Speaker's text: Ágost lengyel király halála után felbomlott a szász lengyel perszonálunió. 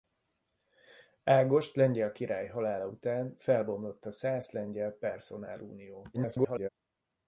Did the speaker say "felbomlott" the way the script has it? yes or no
yes